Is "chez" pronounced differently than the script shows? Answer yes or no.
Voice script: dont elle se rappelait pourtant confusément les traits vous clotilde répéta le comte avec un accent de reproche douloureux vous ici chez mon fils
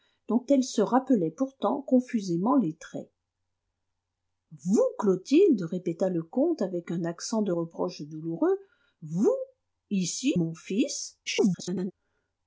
yes